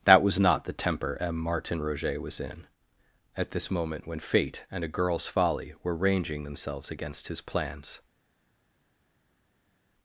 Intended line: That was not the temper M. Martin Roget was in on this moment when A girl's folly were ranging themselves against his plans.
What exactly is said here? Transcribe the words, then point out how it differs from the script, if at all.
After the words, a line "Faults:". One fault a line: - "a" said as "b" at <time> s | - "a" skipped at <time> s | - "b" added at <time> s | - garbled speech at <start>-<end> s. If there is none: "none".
That was not the temper M. Martin Roget was in at this moment when Fate and a girl's folly were ranging themselves against his plans.
Faults:
- "on" said as "at" at 3.4 s
- "Fate and" added at 4.2 s